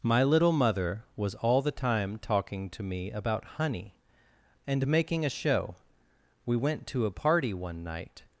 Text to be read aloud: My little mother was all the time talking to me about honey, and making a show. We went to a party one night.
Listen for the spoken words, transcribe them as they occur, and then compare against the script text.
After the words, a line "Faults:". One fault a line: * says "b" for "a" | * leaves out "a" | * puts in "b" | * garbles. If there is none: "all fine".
My little mother was all the time talking to me about honey, and making a show. We went to a party one night.
Faults:
all fine